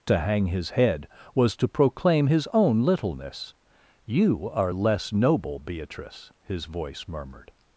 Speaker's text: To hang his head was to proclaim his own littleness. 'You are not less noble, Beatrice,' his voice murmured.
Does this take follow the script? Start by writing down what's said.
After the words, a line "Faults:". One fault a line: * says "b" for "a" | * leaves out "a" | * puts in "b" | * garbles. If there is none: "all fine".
To hang his head was to proclaim his own littleness. 'You are less noble, Beatrice,' his voice murmured.
Faults:
* leaves out "not"